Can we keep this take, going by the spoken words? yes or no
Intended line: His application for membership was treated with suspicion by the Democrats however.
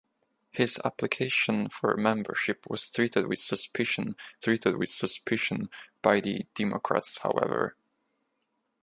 no